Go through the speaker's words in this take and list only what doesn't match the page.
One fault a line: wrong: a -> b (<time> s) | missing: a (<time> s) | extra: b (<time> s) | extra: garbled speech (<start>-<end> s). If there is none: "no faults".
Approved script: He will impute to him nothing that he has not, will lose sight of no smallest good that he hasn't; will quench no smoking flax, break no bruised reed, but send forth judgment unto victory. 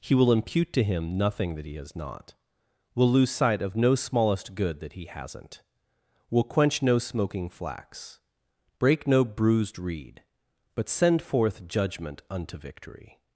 no faults